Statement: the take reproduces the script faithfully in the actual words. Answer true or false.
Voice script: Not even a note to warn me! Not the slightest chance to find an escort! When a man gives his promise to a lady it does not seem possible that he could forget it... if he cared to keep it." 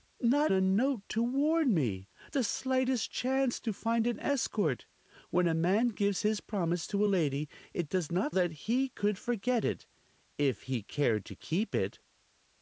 false